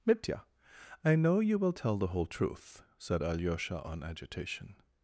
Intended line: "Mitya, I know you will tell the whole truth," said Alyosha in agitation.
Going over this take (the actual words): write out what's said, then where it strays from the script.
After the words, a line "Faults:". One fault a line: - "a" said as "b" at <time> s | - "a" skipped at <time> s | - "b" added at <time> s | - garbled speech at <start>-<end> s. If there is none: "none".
"Mitya, I know you will tell the whole truth," said Alyosha on agitation.
Faults:
- "in" said as "on" at 3.8 s